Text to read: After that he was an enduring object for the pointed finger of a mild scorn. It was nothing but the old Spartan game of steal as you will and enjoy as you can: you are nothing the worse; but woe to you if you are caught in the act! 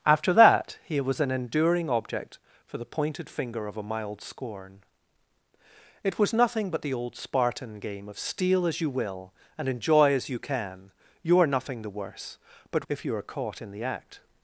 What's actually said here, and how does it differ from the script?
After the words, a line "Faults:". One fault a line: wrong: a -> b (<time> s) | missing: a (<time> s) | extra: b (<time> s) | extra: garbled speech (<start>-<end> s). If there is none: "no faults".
After that he was an enduring object for the pointed finger of a mild scorn. It was nothing but the old Spartan game of steal as you will and enjoy as you can: you are nothing the worse; but if you are caught in the act!
Faults:
missing: woe to you (12.9 s)